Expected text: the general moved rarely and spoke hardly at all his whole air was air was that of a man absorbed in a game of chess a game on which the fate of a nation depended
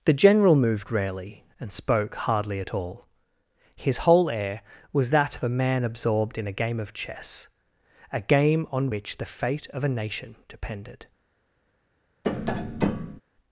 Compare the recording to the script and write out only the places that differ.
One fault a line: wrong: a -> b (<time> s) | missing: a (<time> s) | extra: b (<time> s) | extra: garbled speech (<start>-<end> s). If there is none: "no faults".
missing: air was (5.1 s)